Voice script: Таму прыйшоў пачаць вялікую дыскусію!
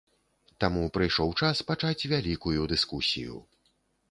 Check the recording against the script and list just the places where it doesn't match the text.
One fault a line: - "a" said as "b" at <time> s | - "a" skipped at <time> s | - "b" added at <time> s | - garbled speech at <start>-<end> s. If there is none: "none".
- "час" added at 1.4 s